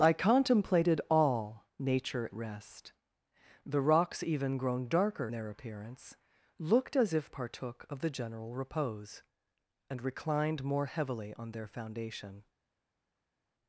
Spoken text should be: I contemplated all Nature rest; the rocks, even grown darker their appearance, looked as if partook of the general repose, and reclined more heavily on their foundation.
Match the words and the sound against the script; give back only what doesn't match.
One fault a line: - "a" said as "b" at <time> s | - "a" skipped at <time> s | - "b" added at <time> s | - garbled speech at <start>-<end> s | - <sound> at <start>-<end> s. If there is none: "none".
none